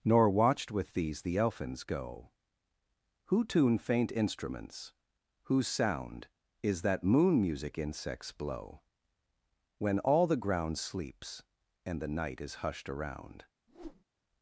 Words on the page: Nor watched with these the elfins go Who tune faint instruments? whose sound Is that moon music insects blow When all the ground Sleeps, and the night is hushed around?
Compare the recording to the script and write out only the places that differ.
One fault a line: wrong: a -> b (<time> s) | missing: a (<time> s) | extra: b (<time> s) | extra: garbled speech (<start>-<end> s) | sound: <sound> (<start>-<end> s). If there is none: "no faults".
sound: whoosh (13.7-14.0 s)